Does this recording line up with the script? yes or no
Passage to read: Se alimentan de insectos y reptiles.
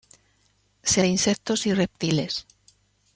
no